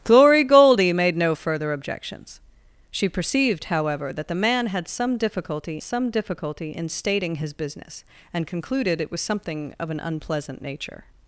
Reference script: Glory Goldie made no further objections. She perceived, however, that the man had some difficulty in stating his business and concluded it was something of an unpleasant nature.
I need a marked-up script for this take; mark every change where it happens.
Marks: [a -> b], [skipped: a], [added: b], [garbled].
Glory Goldie made no further objections. She perceived, however, that the man had some difficulty [added: some difficulty] in stating his business and concluded it was something of an unpleasant nature.